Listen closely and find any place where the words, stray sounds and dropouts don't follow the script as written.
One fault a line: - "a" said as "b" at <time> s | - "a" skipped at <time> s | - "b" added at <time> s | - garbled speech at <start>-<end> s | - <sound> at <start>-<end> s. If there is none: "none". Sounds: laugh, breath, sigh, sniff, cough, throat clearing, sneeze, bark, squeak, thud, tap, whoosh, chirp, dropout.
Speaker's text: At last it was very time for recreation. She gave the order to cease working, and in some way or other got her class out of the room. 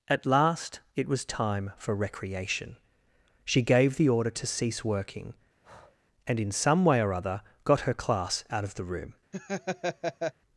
- "very" skipped at 1.2 s
- breath at 5.6-6.0 s
- laugh at 9.3-10.3 s